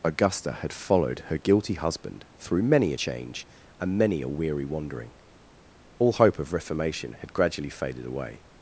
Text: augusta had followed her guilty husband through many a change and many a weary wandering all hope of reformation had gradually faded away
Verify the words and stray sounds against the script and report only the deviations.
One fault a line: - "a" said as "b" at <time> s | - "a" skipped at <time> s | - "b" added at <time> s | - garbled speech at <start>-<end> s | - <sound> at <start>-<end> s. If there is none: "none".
none